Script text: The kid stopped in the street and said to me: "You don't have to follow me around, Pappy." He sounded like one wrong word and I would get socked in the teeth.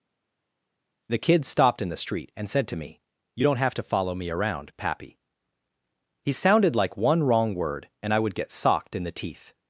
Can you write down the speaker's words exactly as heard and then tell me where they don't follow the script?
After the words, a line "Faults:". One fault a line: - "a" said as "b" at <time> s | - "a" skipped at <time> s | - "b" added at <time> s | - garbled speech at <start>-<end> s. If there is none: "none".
The kid stopped in the street and said to me: "You don't have to follow me around, Pappy." He sounded like one wrong word and I would get socked in the teeth.
Faults:
none